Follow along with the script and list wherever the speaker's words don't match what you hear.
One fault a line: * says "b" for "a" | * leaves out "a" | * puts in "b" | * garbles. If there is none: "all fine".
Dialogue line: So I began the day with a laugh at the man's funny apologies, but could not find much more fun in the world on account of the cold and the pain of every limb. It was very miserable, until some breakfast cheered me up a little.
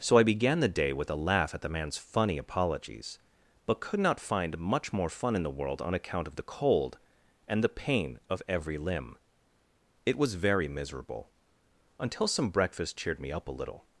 all fine